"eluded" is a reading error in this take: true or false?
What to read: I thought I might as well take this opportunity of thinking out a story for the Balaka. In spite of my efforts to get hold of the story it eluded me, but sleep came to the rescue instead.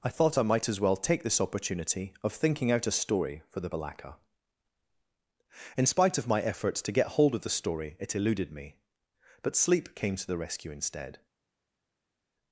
false